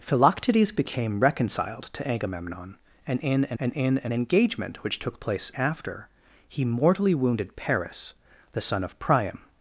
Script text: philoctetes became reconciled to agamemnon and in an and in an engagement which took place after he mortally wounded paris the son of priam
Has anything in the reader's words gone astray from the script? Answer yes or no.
no